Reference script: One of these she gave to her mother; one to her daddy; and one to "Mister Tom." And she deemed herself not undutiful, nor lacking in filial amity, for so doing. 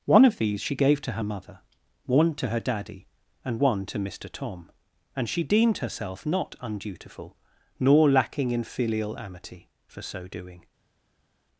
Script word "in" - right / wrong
right